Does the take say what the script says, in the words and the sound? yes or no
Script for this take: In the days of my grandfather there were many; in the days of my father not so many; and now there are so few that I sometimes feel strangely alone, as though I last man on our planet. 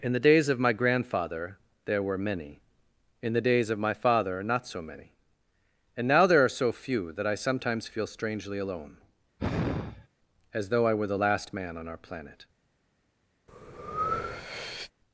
no